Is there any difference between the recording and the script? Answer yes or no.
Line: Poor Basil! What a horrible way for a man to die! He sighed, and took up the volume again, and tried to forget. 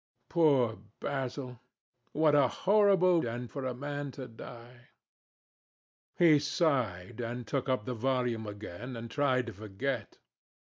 yes